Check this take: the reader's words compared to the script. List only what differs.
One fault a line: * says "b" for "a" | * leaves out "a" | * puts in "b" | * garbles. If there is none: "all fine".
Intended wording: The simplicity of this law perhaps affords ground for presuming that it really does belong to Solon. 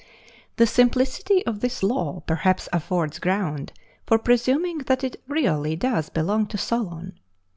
all fine